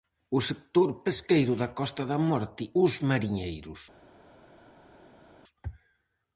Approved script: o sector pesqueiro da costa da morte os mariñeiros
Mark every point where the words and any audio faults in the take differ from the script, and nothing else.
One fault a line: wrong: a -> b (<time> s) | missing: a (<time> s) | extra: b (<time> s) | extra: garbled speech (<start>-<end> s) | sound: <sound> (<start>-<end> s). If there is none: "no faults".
no faults